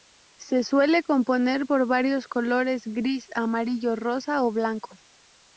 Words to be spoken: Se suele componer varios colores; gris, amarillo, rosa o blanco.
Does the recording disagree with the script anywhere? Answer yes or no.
yes